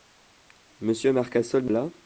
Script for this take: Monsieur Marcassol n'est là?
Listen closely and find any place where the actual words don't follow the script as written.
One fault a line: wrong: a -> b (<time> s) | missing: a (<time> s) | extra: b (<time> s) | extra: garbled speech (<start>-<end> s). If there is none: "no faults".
no faults